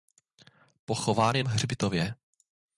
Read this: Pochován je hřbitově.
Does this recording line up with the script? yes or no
yes